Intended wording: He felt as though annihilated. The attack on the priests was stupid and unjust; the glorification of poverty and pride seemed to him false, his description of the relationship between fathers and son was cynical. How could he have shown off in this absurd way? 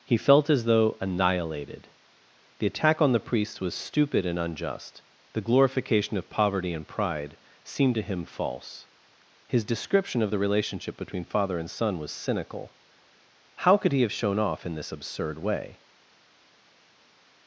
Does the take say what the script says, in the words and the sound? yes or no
no